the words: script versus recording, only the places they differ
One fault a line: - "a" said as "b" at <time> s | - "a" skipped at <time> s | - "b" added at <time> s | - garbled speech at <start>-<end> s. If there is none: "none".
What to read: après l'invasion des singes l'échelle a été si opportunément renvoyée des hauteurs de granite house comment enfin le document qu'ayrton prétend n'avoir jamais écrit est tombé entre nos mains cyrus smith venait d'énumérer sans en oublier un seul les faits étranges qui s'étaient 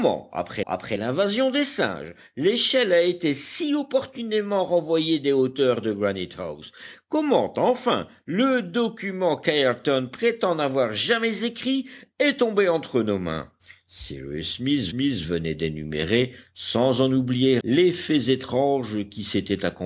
- "après" added at 0.7 s
- "smith" added at 14.9 s
- "un seul" skipped at 17.6 s